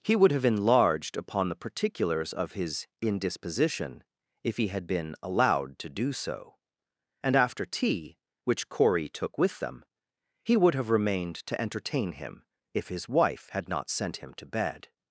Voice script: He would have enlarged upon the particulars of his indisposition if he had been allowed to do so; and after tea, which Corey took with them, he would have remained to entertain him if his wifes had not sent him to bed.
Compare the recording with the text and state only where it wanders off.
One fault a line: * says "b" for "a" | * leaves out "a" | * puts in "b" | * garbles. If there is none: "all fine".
* says "wife" for "wifes"